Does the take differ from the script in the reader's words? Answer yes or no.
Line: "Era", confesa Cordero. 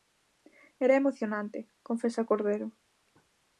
yes